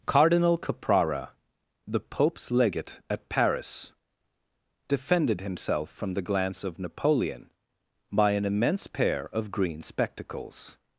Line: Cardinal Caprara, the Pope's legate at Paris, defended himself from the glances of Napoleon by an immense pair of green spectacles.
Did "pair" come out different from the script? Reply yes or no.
no